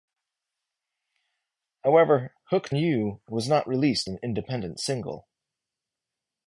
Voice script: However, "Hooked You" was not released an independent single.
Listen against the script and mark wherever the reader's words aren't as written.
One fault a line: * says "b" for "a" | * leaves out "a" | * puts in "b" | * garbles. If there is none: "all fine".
all fine